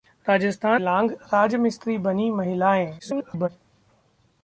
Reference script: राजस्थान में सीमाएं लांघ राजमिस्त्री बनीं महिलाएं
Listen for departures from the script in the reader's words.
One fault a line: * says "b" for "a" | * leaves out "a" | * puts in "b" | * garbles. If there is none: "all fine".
* leaves out "में सीमाएं"
* garbles